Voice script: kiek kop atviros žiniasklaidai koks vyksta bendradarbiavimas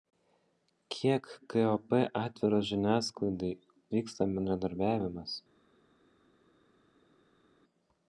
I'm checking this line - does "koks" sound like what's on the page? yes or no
no